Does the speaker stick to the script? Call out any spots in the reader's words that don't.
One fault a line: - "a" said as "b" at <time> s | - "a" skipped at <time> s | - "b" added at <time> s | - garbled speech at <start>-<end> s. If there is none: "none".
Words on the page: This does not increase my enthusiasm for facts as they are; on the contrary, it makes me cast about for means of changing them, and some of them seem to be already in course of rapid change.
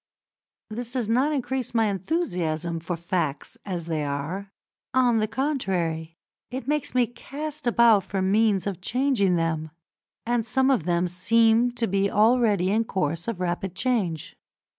none